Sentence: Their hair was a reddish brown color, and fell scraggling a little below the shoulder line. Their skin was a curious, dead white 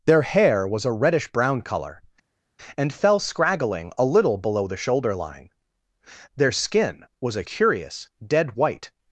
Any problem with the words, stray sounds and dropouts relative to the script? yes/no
no